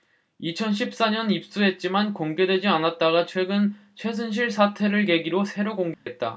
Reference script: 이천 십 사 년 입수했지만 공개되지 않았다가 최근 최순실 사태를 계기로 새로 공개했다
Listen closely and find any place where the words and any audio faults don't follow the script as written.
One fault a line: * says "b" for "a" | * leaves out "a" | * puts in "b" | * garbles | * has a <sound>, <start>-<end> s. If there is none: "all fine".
* has a dropout, 5.9-6.1 s